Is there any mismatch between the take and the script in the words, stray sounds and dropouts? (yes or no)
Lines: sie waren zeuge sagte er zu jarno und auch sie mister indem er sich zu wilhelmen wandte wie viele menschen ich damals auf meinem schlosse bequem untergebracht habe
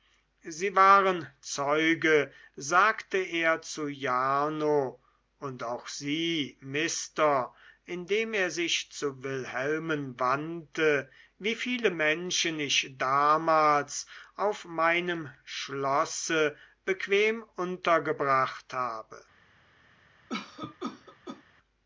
yes